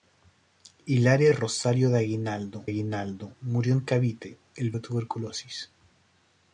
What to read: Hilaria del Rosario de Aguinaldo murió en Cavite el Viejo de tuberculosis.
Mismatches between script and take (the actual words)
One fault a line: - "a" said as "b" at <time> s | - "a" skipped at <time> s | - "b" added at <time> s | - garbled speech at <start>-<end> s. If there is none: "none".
- "del" skipped at 1.3 s
- "Aguinaldo" added at 2.6 s
- "Viejo" skipped at 4.7 s